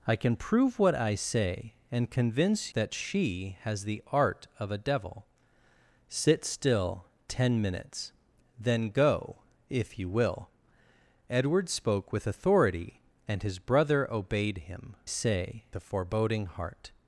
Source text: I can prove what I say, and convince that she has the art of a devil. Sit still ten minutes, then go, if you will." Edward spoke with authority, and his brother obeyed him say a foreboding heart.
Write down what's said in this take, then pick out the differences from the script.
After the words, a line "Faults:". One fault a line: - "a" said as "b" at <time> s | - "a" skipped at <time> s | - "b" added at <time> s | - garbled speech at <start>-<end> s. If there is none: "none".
I can prove what I say, and convince that she has the art of a devil. Sit still ten minutes, then go, if you will." Edward spoke with authority, and his brother obeyed him say a foreboding heart.
Faults:
none